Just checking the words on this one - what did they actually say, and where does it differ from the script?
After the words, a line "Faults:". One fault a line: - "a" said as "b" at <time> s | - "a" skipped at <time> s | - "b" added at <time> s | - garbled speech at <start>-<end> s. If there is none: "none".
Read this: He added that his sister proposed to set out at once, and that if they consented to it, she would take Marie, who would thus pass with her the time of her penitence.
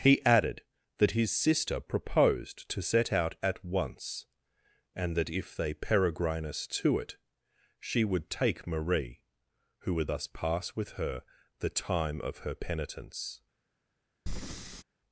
He added that his sister proposed to set out at once, and that if they peregrinus to it, she would take Marie, who would thus pass with her the time of her penitence.
Faults:
- "consented" said as "peregrinus" at 5.8 s